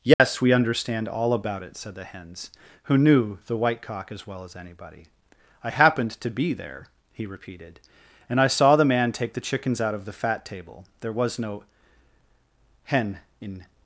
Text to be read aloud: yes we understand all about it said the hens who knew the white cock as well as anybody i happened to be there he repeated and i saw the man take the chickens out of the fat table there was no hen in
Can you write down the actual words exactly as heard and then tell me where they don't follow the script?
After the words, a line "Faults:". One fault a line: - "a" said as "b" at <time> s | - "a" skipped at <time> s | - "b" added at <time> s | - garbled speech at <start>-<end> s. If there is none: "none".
yes we understand all about it said the hens who knew the white cock as well as anybody i happened to be there he repeated and i saw the man take the chickens out of the fat table there was no hen in
Faults:
none